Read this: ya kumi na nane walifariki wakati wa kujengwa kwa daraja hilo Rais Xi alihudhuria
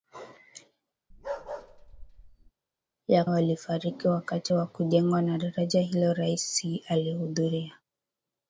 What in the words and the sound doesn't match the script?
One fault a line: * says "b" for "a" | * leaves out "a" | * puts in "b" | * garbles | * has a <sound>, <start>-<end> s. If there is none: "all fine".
* has a bark, 1.1-2.5 s
* leaves out "kumi na nane"